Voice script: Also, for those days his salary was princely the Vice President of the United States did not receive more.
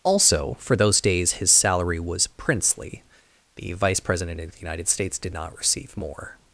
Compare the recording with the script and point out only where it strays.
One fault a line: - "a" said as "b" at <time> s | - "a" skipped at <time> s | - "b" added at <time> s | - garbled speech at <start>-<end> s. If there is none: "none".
none